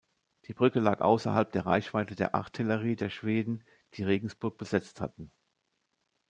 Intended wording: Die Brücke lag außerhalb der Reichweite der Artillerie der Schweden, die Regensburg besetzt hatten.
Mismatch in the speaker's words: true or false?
false